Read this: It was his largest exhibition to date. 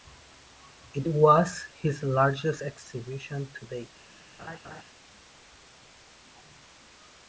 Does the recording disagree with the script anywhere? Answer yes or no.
no